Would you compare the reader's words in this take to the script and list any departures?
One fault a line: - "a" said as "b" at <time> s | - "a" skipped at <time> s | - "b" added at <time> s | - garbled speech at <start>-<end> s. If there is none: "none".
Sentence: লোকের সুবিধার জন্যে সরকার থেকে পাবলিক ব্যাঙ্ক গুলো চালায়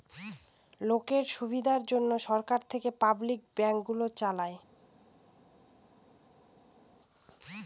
none